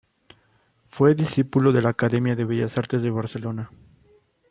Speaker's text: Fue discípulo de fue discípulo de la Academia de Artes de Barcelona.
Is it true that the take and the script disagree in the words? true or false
true